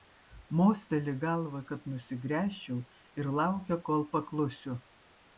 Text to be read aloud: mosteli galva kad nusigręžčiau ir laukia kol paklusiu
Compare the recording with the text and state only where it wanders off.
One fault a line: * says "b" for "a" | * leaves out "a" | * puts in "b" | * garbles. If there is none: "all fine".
all fine